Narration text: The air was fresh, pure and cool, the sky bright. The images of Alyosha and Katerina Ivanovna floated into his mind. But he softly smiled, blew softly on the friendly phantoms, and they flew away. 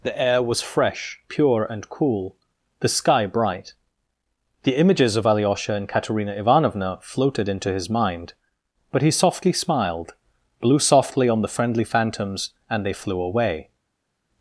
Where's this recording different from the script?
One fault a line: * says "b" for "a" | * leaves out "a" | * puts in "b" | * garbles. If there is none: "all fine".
all fine